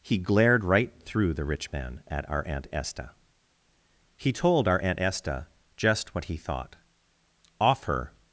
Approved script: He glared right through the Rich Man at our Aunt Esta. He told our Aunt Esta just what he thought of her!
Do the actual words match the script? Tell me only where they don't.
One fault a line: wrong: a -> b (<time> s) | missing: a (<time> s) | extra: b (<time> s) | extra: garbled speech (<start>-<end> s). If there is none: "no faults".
wrong: of -> off (7.6 s)